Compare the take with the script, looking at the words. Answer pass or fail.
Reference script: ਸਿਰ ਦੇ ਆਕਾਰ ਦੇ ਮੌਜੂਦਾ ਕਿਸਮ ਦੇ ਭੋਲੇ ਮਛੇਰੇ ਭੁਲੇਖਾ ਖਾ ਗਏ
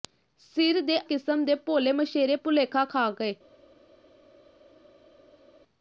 fail